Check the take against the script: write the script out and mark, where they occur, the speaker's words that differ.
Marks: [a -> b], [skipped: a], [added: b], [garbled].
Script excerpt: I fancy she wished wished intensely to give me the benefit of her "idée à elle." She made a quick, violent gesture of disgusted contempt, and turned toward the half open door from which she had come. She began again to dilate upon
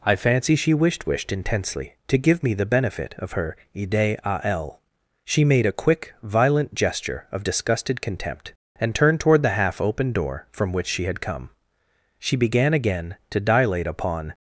I fancy she wished wished intensely to give me the benefit of her "idée à elle." She made a quick, violent gesture of disgusted contempt, and turned toward the half open door from which she had come. She began again to dilate upon